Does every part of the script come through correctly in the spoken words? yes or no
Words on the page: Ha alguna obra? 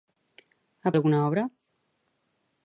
yes